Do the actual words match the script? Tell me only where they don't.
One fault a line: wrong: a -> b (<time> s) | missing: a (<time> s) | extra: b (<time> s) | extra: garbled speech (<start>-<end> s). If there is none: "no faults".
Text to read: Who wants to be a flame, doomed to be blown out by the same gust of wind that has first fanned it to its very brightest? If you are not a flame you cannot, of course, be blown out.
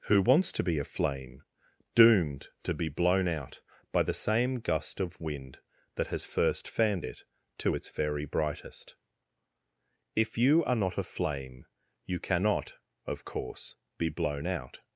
no faults